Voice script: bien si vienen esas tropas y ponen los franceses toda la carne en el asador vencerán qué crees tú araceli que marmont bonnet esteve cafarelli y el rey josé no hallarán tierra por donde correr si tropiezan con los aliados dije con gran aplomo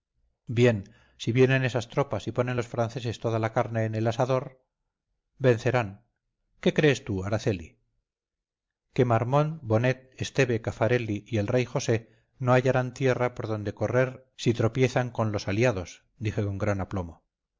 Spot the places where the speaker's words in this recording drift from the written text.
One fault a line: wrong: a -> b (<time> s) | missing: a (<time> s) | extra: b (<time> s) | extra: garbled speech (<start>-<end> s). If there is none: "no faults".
no faults